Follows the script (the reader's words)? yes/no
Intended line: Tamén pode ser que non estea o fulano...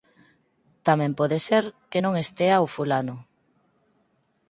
yes